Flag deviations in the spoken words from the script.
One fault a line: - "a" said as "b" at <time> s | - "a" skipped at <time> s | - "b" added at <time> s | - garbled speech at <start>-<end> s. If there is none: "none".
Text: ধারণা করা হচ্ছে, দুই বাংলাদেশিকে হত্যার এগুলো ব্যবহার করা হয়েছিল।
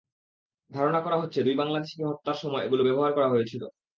- "সময়" added at 2.4 s